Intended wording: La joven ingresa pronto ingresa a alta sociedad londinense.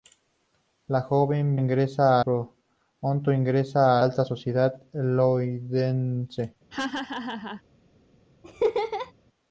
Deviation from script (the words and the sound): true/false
true